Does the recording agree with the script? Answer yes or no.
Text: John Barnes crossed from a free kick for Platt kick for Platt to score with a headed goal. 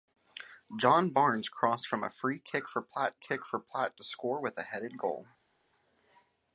yes